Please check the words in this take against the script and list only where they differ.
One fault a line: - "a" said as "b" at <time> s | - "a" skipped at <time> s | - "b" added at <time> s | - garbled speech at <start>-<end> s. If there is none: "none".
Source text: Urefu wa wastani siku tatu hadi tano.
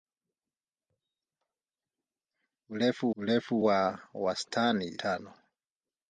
- "urefu" added at 3.2 s
- "siku tatu hadi" skipped at 5.0 s